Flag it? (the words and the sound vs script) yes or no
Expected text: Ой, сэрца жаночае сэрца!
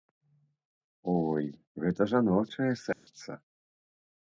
yes